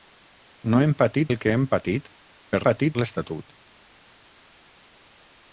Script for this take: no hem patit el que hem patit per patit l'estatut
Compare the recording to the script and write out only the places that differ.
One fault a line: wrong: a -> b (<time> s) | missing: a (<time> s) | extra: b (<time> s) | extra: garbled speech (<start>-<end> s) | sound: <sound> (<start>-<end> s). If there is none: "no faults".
no faults